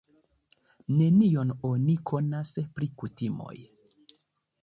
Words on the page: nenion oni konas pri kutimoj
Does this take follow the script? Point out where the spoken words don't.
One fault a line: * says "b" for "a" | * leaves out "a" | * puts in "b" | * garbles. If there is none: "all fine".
all fine